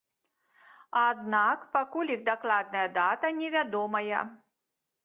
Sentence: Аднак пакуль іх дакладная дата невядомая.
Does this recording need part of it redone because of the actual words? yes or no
no